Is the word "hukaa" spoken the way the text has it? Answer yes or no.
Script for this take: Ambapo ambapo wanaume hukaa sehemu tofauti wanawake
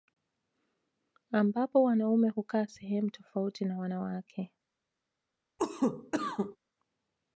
yes